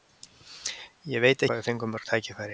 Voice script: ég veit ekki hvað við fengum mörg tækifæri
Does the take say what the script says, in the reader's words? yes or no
no